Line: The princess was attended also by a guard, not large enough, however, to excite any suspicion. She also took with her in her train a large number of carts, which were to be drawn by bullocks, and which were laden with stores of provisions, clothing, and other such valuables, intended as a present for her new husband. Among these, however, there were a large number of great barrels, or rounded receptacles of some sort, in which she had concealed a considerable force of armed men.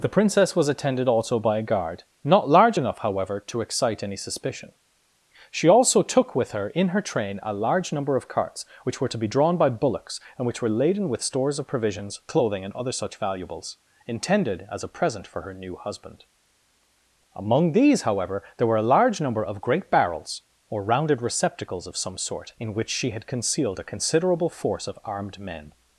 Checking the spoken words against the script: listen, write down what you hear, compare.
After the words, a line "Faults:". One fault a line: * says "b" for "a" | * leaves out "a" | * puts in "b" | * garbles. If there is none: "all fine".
The princess was attended also by a guard, not large enough, however, to excite any suspicion. She also took with her in her train a large number of carts, which were to be drawn by bullocks, and which were laden with stores of provisions, clothing, and other such valuables, intended as a present for her new husband. Among these, however, there were a large number of great barrels, or rounded receptacles of some sort, in which she had concealed a considerable force of armed men.
Faults:
all fine